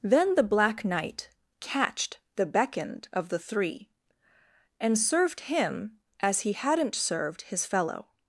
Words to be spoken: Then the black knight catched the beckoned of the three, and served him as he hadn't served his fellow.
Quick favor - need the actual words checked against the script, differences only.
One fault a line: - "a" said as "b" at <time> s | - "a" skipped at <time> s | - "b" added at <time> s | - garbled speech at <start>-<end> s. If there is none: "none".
none